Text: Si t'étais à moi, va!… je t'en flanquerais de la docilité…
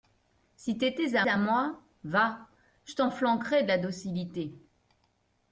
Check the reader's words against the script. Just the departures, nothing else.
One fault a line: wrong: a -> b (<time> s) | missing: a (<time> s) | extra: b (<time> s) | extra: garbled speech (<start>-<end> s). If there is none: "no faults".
extra: à (1.3 s)